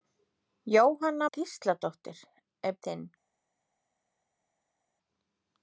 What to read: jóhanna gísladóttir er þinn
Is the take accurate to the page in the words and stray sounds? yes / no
yes